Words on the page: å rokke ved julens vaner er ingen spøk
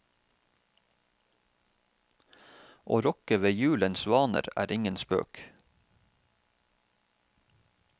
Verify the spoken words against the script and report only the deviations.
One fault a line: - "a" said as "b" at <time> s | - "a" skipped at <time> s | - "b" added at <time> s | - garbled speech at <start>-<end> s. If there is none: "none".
none